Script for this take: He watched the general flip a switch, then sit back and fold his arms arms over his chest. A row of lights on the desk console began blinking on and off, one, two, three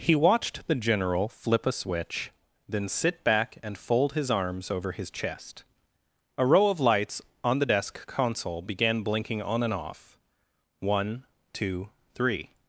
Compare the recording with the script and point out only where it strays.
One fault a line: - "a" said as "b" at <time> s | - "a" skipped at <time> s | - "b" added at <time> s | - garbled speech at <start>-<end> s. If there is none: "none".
- "arms" skipped at 4.7 s